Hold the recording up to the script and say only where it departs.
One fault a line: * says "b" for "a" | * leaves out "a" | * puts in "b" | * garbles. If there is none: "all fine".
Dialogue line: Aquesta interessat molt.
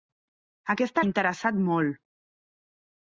all fine